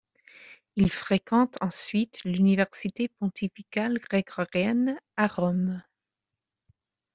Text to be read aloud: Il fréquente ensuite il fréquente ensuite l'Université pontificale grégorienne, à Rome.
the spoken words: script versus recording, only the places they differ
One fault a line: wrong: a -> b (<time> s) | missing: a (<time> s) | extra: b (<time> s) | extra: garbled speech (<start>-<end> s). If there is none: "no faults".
missing: il fréquente ensuite (2.2 s)